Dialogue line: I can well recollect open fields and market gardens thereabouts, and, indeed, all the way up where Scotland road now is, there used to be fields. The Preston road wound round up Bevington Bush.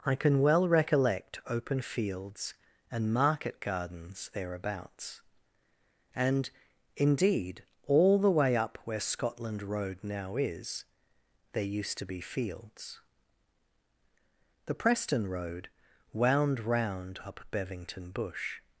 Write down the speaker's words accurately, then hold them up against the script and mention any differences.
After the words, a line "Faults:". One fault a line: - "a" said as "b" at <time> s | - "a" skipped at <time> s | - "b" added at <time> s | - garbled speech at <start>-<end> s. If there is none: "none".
I can well recollect open fields and market gardens thereabouts, and, indeed, all the way up where Scotland road now is, there used to be fields. The Preston road wound round up Bevington Bush.
Faults:
none